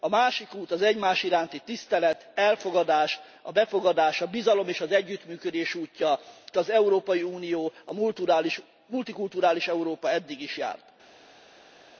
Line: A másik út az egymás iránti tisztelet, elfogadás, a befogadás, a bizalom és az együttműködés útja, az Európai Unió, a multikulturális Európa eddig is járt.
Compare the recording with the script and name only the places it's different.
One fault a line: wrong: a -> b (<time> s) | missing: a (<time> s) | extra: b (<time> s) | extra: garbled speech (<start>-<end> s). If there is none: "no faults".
no faults